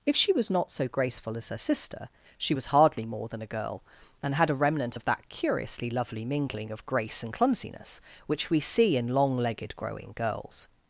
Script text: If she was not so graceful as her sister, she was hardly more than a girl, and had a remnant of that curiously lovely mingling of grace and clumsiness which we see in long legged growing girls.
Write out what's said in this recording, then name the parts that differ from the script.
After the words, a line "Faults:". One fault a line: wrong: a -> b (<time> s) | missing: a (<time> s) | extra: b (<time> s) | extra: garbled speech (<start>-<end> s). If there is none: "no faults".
If she was not so graceful as her sister, she was hardly more than a girl, and had a remnant of that curiously lovely mingling of grace and clumsiness which we see in long legged growing girls.
Faults:
no faults